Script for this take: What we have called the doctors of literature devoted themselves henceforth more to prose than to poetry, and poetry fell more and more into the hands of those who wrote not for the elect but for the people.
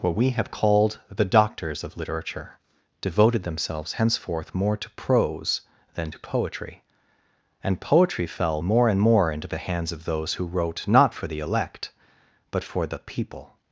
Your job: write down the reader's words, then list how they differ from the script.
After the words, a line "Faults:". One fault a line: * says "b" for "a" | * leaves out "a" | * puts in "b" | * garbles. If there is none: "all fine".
What we have called the doctors of literature devoted themselves henceforth more to prose than to poetry, and poetry fell more and more into the hands of those who wrote not for the elect but for the people.
Faults:
all fine